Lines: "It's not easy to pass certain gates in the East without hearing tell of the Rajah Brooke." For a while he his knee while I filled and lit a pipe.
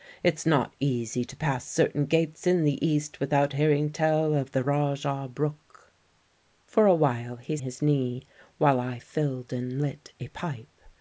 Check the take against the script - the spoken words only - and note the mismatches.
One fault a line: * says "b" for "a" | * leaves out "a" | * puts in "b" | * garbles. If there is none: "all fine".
all fine